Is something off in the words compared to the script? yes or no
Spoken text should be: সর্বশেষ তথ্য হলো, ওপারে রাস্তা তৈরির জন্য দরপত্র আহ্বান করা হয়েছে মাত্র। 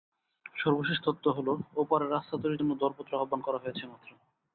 no